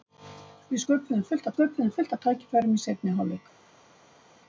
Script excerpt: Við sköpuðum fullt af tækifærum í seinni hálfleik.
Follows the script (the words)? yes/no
no